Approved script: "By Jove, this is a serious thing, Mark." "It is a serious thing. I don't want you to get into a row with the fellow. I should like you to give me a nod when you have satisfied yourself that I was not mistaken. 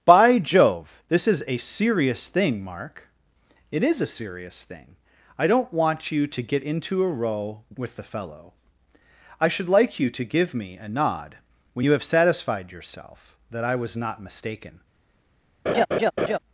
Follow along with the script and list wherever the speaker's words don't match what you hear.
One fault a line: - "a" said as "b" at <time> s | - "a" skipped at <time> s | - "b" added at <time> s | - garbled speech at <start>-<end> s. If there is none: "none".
none